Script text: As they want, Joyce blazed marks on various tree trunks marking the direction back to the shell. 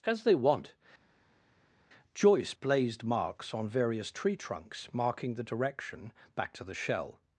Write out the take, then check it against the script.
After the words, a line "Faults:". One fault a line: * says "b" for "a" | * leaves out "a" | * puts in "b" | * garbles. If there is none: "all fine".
As they want, Joyce blazed marks on various tree trunks marking the direction back to the shell.
Faults:
all fine